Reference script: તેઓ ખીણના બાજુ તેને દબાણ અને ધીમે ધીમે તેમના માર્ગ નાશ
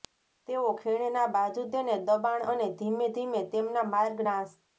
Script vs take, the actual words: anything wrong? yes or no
no